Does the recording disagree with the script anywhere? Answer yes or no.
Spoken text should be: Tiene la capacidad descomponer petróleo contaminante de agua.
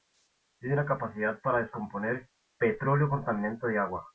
yes